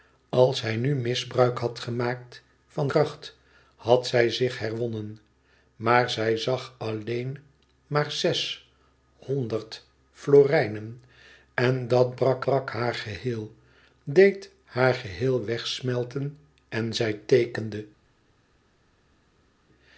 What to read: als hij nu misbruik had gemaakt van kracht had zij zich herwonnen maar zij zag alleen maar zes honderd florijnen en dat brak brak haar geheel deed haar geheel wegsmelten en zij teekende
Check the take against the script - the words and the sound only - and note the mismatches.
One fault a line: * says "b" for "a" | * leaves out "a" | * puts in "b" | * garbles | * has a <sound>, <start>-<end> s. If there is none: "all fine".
all fine